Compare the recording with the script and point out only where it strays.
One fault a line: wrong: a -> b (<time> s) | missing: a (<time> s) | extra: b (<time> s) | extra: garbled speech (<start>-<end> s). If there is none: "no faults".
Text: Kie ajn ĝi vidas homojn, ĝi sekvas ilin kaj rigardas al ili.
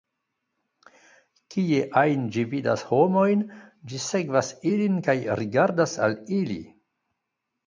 no faults